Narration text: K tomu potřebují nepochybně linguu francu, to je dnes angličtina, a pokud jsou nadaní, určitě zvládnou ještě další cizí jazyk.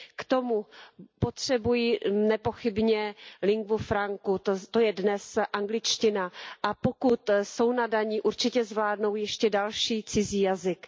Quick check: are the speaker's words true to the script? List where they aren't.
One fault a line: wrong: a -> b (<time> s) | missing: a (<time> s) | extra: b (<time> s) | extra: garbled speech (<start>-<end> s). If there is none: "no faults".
no faults